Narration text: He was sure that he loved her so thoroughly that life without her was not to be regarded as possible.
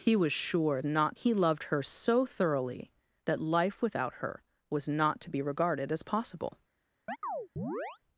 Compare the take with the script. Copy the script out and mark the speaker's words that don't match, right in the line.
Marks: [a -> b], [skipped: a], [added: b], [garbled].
He was sure [that -> not] he loved her so thoroughly that life without her was not to be regarded as possible.